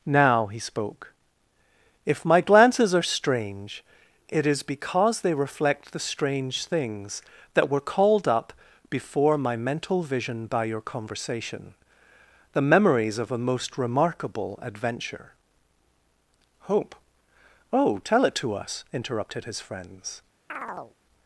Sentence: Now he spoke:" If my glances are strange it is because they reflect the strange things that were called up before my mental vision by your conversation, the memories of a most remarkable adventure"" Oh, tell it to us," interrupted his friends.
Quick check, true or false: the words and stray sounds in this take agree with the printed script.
false